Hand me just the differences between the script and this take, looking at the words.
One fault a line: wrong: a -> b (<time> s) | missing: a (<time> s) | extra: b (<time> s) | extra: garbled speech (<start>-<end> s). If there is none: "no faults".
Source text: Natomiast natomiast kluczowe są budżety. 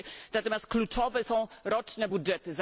missing: natomiast (0.7 s)
extra: roczne (1.6 s)